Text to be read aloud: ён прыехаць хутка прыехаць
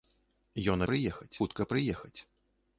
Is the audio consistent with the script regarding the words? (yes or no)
yes